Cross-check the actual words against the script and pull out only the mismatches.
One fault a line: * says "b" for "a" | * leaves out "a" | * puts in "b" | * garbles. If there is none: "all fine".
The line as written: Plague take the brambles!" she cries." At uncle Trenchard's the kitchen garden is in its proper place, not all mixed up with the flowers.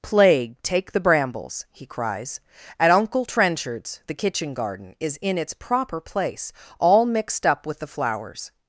* says "he" for "she"
* leaves out "not"